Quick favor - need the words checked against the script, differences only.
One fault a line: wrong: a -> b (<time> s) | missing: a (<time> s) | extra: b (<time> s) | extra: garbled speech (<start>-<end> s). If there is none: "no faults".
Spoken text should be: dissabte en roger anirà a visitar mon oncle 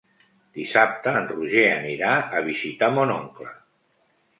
no faults